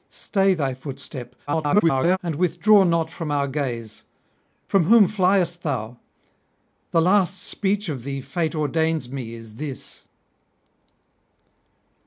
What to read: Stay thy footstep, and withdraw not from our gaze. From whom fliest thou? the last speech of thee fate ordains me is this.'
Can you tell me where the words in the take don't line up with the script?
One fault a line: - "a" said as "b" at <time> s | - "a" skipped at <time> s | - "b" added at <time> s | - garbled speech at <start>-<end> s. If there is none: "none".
- garbled speech at 1.5-2.2 s